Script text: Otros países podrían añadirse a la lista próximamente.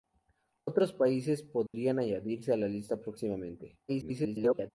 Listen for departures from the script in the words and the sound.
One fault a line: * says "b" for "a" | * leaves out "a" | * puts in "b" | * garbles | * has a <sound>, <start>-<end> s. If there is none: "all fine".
* has a dropout, 1.7-1.7 s
* garbles